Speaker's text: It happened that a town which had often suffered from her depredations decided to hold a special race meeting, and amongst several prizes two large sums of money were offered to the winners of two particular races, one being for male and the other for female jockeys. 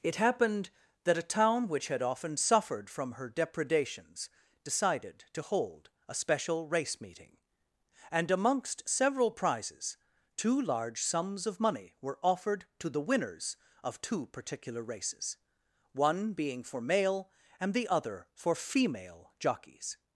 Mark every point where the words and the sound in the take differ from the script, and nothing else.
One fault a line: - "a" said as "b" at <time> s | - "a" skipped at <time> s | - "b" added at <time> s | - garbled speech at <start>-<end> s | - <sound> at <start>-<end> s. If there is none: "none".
none